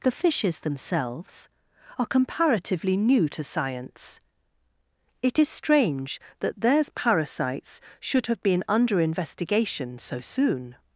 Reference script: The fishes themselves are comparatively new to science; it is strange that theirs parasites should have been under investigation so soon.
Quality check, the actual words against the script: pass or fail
pass